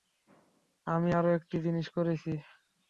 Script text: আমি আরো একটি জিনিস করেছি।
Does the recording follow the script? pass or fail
pass